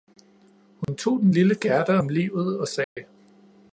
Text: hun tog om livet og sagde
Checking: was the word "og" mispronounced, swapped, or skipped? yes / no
no